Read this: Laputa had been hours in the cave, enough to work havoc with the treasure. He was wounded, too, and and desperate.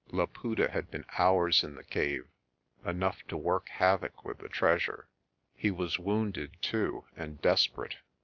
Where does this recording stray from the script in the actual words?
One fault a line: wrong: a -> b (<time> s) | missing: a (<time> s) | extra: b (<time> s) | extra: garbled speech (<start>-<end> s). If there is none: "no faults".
missing: and (7.4 s)